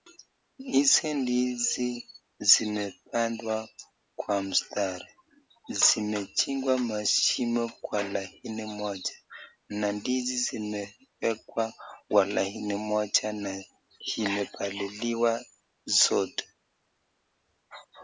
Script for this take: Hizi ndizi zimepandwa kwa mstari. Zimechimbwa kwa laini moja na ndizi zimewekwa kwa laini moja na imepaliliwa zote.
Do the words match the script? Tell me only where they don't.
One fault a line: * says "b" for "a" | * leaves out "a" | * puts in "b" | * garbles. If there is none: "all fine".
* puts in "mashimo"